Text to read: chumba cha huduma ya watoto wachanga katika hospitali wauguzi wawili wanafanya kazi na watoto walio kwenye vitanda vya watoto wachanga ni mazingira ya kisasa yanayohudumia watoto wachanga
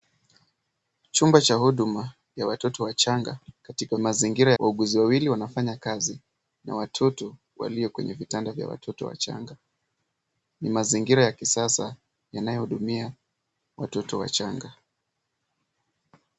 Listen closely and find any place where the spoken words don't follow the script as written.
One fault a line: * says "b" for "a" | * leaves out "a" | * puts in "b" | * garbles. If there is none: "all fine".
* says "mazingira" for "hospitali"